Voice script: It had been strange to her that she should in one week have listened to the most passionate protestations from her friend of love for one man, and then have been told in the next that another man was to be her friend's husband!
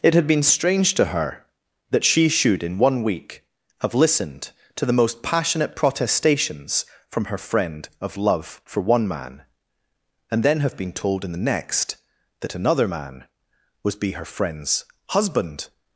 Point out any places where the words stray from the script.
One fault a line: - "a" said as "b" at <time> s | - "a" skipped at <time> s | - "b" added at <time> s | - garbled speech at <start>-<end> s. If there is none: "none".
- "to" skipped at 13.9 s